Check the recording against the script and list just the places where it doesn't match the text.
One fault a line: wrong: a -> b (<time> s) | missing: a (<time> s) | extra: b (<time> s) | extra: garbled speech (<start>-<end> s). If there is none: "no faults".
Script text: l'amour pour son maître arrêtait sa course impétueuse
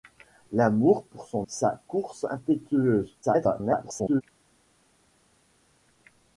missing: maître arrêtait (1.4 s)
extra: garbled speech (3.2-4.2 s)